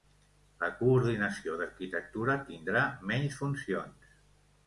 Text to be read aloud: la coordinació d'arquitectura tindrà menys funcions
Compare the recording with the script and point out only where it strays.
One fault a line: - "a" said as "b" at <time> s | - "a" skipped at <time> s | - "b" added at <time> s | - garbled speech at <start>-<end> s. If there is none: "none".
none